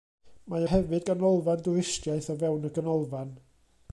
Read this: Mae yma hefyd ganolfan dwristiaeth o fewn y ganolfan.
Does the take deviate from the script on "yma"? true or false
true